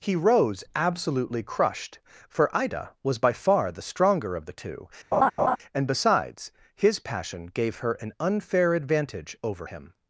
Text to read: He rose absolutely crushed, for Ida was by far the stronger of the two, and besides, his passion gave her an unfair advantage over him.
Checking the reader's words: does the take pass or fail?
pass